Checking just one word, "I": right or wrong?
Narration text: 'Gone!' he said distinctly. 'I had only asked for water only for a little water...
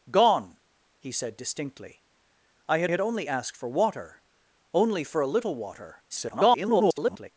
right